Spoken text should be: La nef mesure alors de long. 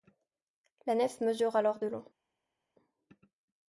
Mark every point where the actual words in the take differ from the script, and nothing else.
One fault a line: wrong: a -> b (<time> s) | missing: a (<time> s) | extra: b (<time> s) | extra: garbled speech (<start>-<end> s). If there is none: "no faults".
no faults